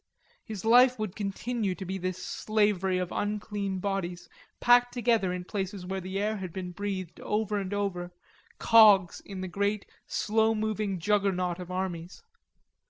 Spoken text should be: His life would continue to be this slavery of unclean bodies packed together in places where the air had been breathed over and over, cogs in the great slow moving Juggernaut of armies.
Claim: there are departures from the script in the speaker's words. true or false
false